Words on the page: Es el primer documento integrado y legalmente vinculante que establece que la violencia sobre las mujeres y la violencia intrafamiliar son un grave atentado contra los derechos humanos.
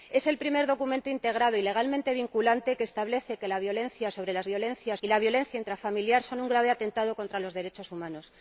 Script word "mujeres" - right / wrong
wrong